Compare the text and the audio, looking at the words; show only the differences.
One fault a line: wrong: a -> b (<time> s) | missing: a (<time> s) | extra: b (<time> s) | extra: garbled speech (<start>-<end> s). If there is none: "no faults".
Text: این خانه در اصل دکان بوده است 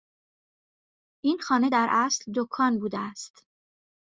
no faults